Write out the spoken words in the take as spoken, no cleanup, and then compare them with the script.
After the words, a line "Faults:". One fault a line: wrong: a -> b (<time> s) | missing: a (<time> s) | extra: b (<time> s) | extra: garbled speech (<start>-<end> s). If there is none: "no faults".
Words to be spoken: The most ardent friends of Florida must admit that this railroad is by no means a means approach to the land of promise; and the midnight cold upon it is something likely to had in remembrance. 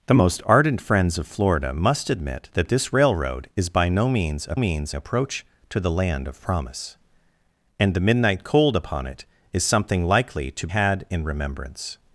The most ardent friends of Florida must admit that this railroad is by no means a means approach to the land of promise; and the midnight cold upon it is something likely to had in remembrance.
Faults:
no faults